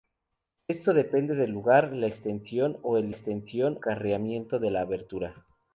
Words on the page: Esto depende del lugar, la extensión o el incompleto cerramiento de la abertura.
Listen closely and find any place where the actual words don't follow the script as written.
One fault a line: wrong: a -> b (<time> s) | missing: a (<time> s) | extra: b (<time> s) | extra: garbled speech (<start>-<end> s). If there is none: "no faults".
wrong: incompleto -> extensión (3.1 s)